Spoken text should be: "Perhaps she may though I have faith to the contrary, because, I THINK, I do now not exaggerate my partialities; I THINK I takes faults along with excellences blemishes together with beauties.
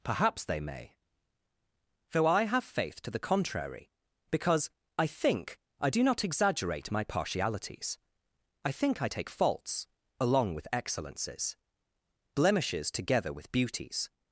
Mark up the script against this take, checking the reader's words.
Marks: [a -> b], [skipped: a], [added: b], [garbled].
"Perhaps [she -> they] may though I have faith to the contrary, because, I THINK, I do [skipped: now] not exaggerate my partialities; I THINK I [takes -> take] faults along with excellences blemishes together with beauties.